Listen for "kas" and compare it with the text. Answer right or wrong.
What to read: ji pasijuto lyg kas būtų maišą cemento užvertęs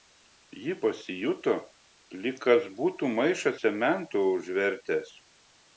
right